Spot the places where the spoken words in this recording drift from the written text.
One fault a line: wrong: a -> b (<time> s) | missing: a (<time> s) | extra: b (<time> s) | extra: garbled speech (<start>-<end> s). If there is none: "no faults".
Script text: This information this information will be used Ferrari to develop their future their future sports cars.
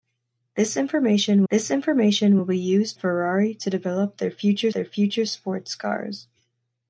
no faults